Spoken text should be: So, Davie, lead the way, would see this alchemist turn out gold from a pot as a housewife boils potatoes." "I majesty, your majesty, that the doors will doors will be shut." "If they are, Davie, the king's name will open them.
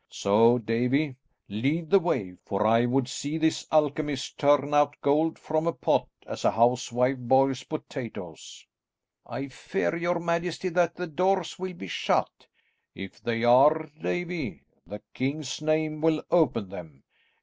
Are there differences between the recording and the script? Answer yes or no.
yes